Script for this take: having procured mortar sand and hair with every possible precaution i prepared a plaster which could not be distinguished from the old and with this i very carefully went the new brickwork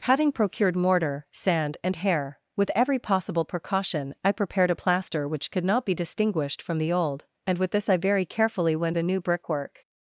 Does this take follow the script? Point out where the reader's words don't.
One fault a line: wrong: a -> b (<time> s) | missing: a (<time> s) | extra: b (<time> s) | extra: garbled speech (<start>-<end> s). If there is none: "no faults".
no faults